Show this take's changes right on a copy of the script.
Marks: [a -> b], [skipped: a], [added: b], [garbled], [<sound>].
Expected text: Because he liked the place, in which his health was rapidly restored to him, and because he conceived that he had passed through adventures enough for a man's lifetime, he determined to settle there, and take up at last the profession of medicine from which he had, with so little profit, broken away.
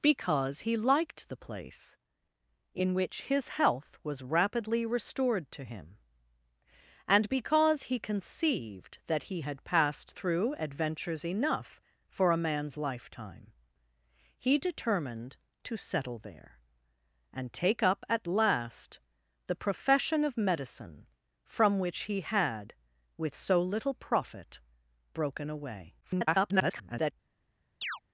Because he liked the place, in which his health was rapidly restored to him, and because he conceived that he had passed through adventures enough for a man's lifetime, he determined to settle there, and take up at last the profession of medicine from which he had, with so little profit, broken away. [garbled] [chirp]